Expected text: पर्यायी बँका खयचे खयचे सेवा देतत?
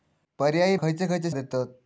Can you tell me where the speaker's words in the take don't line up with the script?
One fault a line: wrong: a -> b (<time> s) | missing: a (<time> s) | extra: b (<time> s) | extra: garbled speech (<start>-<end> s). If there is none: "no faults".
missing: बँका (0.8 s)
missing: सेवा (1.3 s)